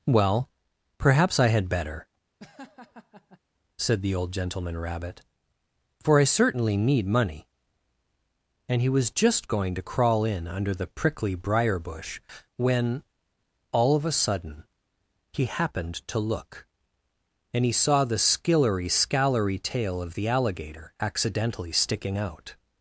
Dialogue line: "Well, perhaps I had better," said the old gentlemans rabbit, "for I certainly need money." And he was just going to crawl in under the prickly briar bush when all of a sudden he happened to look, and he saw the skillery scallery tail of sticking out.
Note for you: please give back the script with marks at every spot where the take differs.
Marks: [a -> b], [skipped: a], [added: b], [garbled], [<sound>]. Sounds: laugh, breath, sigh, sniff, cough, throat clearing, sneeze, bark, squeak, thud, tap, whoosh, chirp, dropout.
"Well, perhaps I had better," [laugh] said the old [gentlemans -> gentleman] rabbit, "for I certainly need money." And he was just going to crawl in under the prickly briar bush when all of a sudden he happened to look, and he saw the skillery scallery tail of [added: the alligator accidentally] sticking out.